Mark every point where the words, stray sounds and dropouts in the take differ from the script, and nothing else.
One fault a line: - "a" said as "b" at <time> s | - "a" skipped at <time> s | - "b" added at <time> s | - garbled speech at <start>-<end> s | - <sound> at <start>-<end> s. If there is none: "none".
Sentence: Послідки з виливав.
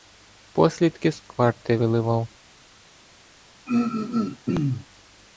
- "кварти" added at 1.2 s
- throat clearing at 3.7-4.9 s